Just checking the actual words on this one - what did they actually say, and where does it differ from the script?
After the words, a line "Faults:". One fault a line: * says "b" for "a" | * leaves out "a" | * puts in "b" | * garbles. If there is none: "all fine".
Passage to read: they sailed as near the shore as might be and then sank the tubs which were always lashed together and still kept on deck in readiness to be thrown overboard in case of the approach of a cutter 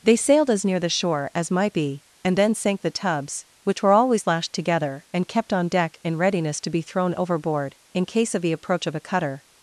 they sailed as near the shore as might be and then sank the tubs which were always lashed together and kept on deck in readiness to be thrown overboard in case of the approach of a cutter
Faults:
* leaves out "still"